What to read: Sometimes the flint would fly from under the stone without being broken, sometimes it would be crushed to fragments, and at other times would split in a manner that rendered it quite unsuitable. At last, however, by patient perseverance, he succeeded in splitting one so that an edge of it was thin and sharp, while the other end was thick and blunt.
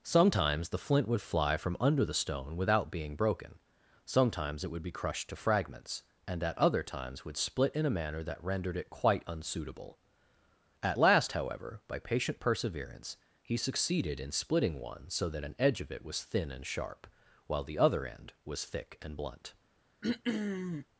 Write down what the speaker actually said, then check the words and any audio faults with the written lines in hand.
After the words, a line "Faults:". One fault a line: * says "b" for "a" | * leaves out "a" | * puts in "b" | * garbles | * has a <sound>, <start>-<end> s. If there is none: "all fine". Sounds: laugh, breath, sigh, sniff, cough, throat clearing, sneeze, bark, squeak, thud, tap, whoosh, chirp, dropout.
Sometimes the flint would fly from under the stone without being broken, sometimes it would be crushed to fragments, and at other times would split in a manner that rendered it quite unsuitable. At last, however, by patient perseverance, he succeeded in splitting one so that an edge of it was thin and sharp, while the other end was thick and blunt.
Faults:
* has a throat clearing, 20.0-20.9 s